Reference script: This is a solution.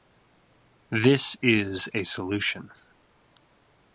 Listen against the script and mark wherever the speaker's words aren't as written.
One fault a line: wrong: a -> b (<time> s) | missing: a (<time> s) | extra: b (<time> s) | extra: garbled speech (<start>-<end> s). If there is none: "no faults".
no faults